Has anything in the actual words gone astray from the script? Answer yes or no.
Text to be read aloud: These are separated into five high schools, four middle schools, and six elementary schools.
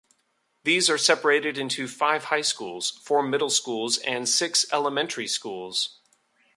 no